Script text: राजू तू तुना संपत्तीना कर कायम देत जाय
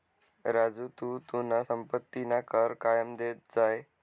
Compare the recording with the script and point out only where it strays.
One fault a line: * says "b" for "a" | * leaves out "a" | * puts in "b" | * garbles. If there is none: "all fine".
all fine